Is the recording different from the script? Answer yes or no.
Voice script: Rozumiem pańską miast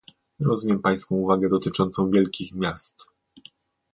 yes